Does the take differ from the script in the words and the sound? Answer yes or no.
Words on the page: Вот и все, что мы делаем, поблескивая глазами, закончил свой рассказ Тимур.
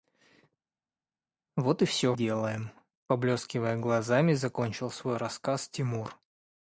yes